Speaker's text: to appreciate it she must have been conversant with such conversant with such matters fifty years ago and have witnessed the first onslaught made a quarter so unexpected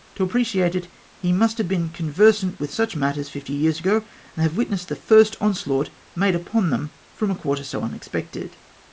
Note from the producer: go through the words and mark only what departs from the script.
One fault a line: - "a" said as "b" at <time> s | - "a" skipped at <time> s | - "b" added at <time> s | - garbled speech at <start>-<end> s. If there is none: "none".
- "she" said as "he" at 1.2 s
- "conversant with such" skipped at 3.0 s
- "upon them from" added at 6.3 s